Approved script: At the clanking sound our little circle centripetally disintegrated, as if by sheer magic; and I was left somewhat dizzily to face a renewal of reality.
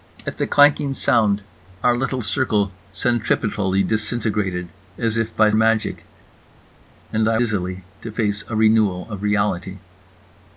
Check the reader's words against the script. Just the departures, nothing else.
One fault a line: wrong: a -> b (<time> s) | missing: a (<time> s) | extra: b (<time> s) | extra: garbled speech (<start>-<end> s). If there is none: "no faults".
missing: sheer (5.5 s)
missing: was left somewhat (7.4 s)